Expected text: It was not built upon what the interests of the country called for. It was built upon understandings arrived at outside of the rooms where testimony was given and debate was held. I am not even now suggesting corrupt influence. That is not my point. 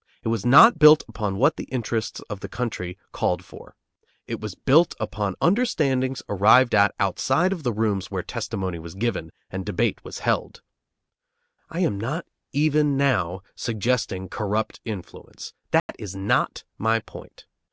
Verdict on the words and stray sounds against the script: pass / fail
fail